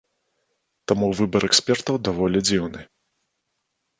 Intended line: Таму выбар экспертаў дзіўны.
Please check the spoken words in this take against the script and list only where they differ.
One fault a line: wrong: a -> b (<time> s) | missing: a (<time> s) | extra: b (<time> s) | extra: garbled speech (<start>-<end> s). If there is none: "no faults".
extra: даволі (2.1 s)